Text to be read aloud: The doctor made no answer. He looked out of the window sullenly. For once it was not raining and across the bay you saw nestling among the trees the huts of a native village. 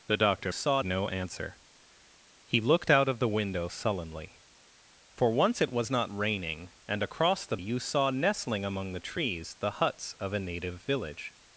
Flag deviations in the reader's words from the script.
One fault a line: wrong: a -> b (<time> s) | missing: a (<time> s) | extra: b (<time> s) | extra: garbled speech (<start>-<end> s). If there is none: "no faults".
wrong: made -> saw (0.5 s)
missing: bay (7.6 s)